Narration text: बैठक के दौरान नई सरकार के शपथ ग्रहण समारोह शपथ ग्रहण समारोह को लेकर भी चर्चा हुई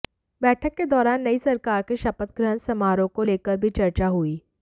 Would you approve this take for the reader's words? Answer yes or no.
no